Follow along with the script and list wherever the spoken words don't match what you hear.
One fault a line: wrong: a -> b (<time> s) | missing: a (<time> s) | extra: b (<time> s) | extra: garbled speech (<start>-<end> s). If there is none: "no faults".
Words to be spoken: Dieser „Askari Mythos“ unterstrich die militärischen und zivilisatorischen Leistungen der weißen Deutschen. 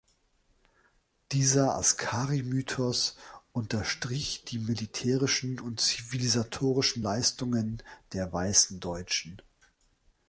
no faults